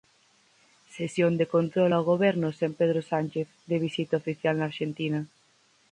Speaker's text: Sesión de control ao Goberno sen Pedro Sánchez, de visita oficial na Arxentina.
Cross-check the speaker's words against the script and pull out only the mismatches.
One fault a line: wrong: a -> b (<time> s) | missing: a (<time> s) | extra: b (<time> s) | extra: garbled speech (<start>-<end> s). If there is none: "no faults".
no faults